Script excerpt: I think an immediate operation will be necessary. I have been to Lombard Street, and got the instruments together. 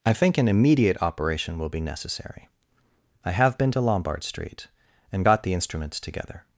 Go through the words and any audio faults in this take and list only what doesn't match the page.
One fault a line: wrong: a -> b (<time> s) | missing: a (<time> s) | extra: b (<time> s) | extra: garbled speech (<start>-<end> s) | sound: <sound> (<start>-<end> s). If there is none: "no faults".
no faults